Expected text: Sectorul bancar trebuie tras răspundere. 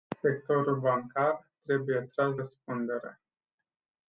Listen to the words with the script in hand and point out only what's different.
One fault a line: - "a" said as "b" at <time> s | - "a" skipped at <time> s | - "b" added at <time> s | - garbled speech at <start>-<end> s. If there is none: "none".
none